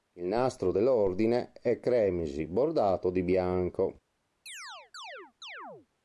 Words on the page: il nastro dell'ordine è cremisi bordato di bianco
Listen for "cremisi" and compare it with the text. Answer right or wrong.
right